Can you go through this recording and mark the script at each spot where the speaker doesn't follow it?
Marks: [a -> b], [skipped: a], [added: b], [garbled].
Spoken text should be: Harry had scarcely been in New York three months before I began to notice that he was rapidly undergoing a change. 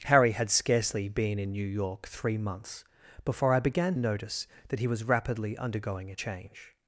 Harry had scarcely been in New York three months before I began [skipped: to] notice that he was rapidly undergoing a change.